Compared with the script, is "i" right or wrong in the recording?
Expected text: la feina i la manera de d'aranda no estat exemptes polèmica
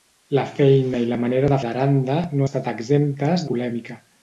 right